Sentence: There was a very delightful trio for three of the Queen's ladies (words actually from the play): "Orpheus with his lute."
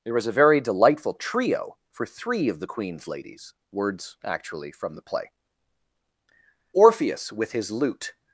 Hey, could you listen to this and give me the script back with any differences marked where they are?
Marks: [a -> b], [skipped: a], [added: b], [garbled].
There was a very delightful trio for three of the Queen's ladies (words actually from the play): "Orpheus with his lute."